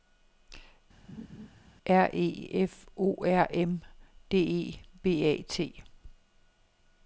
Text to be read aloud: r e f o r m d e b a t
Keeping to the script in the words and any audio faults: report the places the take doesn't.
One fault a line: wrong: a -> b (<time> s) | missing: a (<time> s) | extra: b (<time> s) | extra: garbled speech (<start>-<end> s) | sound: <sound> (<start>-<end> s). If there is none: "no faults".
sound: laugh (1.1-1.5 s)